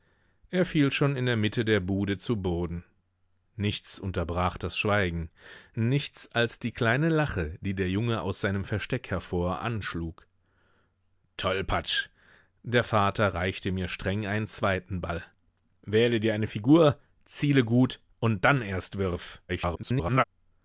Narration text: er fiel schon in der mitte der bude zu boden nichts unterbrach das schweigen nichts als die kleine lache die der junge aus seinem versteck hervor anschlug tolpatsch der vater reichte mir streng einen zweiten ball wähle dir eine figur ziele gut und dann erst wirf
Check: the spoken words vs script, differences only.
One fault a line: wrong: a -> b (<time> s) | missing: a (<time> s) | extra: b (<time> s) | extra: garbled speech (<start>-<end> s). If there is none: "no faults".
extra: garbled speech (19.5-20.2 s)